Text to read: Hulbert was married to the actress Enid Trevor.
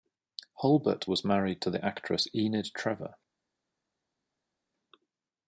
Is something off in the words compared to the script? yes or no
no